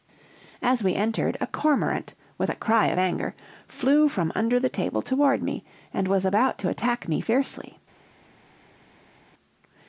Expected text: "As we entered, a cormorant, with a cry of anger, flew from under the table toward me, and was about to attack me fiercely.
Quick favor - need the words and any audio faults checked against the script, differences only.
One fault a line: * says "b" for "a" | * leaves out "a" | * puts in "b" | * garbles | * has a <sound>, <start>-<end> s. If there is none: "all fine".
all fine